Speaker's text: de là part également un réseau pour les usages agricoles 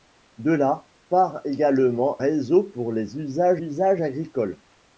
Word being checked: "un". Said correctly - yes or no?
no